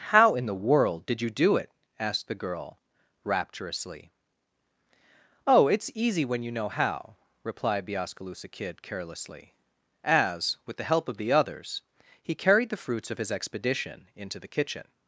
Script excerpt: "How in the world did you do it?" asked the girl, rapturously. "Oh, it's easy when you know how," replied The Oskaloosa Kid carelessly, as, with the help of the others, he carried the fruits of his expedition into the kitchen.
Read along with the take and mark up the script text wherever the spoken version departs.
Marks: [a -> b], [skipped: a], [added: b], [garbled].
"How in the world did you do it?" asked the girl, rapturously. "Oh, it's easy when you know how," replied The Oskaloosa Kid carelessly, as, with the help of the others, he carried the fruits of his expedition into the kitchen.